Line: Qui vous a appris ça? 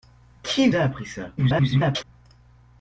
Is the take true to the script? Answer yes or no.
no